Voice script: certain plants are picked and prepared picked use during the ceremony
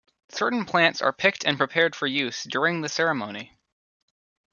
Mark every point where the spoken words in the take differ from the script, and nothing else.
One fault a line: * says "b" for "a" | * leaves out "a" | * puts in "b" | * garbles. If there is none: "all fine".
* says "for" for "picked"